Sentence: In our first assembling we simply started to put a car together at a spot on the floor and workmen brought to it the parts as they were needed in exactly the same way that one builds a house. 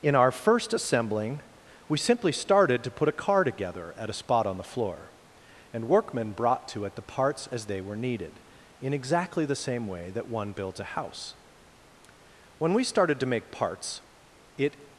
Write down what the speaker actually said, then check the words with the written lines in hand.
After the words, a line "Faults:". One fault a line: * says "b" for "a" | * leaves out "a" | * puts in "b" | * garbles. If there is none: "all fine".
In our first assembling we simply started to put a car together at a spot on the floor and workmen brought to it the parts as they were needed in exactly the same way that one builds a house. When we started to make parts it
Faults:
* puts in "When we started to make parts it"